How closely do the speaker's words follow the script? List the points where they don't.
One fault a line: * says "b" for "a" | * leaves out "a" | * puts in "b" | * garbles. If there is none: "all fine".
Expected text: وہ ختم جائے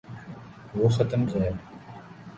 all fine